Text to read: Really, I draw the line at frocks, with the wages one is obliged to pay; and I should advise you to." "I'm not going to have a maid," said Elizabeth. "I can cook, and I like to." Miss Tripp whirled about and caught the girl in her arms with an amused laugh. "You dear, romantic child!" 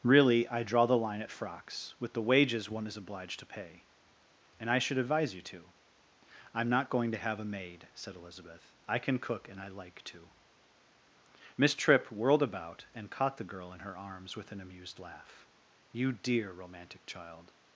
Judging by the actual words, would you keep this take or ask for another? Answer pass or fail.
pass